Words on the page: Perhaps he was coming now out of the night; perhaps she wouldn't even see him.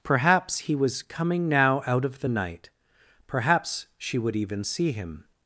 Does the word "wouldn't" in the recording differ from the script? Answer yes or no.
yes